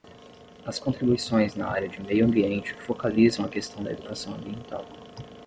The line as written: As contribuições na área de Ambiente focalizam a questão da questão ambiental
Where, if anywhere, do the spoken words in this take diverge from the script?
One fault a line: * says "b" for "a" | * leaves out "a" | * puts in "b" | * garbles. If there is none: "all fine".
* puts in "Meio"
* says "educação" for "questão"